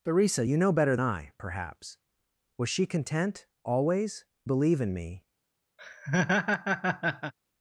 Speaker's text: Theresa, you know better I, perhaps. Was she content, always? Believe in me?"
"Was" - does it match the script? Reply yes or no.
yes